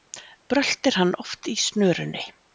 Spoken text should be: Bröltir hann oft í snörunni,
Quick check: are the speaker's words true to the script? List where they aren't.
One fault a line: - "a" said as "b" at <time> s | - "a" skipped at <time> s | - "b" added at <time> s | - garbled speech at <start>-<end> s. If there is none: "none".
none